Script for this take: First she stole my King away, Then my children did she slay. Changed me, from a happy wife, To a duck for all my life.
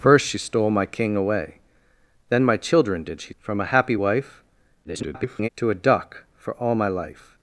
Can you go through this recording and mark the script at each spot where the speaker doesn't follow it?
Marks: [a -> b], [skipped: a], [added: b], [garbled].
First she stole my King away, Then my children did she [skipped: slay. Changed me,] from a happy wife, [garbled] To a duck for all my life.